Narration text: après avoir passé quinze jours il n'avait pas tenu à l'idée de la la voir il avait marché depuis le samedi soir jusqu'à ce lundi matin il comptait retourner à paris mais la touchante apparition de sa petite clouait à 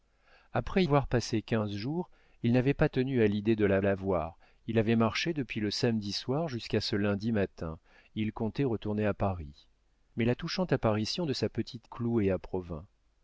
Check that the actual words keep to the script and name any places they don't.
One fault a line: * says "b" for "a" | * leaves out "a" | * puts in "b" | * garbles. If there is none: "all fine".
all fine